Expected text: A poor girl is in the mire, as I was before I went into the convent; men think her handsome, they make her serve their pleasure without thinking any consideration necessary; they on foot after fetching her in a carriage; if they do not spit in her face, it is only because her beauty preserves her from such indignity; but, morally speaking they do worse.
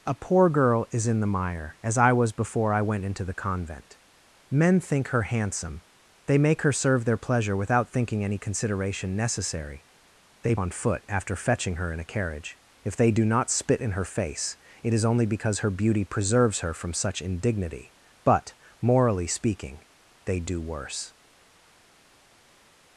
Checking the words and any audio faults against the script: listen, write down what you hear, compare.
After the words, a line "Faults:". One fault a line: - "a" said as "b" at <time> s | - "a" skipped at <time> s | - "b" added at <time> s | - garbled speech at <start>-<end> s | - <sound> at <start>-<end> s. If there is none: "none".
A poor girl is in the mire, as I was before I went into the convent; men think her handsome, they make her serve their pleasure without thinking any consideration necessary; they on foot after fetching her in a carriage; if they do not spit in her face, it is only because her beauty preserves her from such indignity; but, morally speaking they do worse.
Faults:
none